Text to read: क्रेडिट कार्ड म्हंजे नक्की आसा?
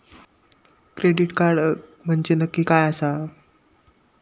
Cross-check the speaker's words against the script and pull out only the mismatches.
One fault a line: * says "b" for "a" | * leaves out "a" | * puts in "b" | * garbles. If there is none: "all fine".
* puts in "काय"